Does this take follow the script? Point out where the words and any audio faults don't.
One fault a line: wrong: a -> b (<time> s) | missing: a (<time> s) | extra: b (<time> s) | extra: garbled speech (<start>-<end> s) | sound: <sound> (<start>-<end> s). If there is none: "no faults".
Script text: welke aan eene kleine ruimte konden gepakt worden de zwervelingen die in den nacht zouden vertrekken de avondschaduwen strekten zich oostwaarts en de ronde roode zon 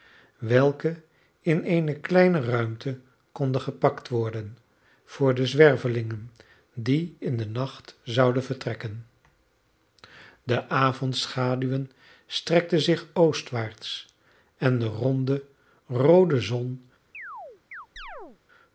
wrong: aan -> in (1.4 s)
extra: voor (5.1 s)
sound: chirp (17.1-18.4 s)